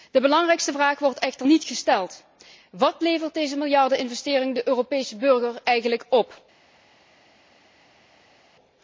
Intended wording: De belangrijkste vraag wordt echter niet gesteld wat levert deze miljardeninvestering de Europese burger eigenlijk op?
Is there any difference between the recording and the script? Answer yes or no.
no